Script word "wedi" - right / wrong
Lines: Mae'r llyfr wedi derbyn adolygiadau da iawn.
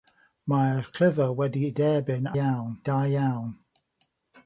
right